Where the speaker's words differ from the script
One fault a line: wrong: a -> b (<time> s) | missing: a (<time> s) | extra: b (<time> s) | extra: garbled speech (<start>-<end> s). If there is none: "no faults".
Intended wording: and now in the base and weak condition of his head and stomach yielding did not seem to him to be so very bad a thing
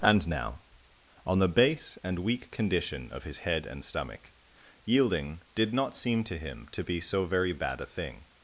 wrong: in -> on (1.2 s)